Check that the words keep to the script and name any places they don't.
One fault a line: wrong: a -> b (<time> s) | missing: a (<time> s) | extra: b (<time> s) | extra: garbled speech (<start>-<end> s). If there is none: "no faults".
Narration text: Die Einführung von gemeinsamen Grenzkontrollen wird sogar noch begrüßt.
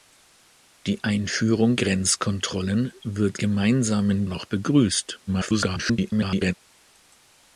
missing: von gemeinsamen (1.8 s)
wrong: sogar -> gemeinsamen (3.4 s)
extra: garbled speech (5.3-6.5 s)